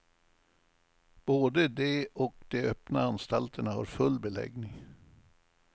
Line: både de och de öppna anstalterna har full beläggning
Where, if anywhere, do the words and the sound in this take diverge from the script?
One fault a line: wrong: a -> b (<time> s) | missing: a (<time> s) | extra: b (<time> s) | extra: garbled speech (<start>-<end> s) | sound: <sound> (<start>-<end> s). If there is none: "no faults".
no faults